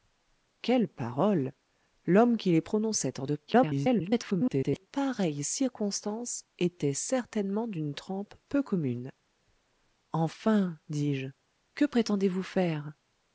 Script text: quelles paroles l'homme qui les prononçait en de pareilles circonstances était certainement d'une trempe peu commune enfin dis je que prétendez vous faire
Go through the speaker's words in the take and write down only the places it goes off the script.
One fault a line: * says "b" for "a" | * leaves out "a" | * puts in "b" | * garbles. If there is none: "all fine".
* garbles